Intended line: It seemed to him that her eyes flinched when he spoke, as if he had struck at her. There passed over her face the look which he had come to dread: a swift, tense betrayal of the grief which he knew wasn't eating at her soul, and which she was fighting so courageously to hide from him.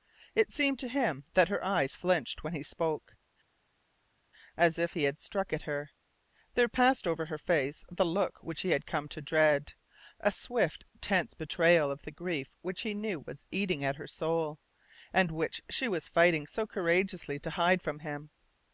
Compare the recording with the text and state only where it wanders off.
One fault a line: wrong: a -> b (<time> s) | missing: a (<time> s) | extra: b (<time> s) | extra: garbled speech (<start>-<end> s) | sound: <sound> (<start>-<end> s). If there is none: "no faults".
wrong: wasn't -> was (13.2 s)